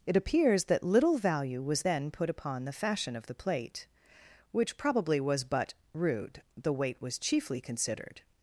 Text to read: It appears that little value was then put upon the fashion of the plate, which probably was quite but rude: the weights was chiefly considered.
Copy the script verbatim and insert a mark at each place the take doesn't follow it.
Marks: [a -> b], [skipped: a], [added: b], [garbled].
It appears that little value was then put upon the fashion of the plate, which probably was [skipped: quite] but rude: the [weights -> weight] was chiefly considered.